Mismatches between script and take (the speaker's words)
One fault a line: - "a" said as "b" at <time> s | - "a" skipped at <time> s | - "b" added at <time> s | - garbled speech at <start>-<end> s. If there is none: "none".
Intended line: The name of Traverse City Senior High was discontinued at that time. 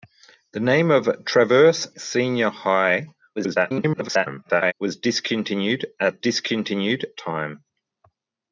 - "City" skipped at 1.9 s
- garbled speech at 3.4-4.7 s
- "that" said as "discontinued" at 6.2 s